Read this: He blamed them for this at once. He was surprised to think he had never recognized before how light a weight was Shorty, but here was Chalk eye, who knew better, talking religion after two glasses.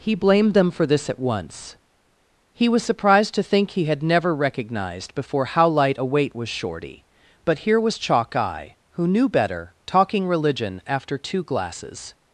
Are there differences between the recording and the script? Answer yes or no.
no